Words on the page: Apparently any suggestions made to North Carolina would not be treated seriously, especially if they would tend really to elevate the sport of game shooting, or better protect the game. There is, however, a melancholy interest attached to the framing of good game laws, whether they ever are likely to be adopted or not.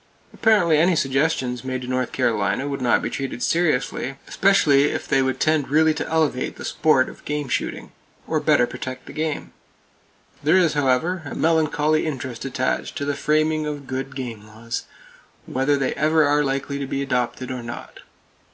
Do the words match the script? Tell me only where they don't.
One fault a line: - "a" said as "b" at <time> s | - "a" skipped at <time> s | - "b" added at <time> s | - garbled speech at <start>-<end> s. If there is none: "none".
none